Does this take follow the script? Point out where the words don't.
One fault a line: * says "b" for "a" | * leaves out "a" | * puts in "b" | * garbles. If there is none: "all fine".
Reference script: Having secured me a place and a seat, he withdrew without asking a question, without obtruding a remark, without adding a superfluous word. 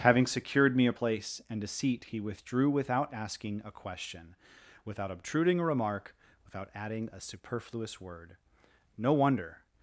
* puts in "No wonder"